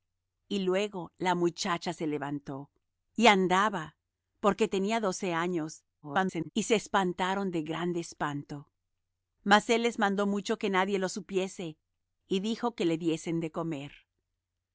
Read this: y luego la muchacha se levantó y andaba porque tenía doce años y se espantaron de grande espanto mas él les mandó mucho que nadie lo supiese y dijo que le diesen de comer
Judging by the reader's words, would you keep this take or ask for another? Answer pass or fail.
fail